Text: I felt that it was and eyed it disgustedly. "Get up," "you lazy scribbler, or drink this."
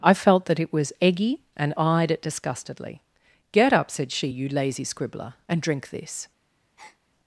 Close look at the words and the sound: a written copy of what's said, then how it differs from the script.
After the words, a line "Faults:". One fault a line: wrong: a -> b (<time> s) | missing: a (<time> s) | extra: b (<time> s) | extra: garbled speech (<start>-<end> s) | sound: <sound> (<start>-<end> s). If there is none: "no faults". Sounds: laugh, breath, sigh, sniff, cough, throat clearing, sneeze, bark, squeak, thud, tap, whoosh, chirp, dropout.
I felt that it was eggy and eyed it disgustedly. "Get up," said she, "you lazy scribbler, and drink this."
Faults:
extra: eggy (1.0 s)
extra: said she (3.9 s)
wrong: or -> and (5.5 s)
sound: breath (6.8-7.0 s)